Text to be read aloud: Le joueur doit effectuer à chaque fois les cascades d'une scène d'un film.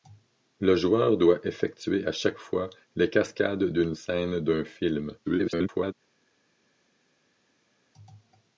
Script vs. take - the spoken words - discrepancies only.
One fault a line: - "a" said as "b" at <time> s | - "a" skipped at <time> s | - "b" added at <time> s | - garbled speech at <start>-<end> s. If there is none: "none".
- garbled speech at 5.2-5.9 s